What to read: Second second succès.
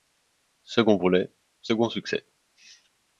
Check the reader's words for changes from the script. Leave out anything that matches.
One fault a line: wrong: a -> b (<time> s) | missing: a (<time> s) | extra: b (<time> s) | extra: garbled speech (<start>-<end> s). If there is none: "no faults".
extra: volet (1.0 s)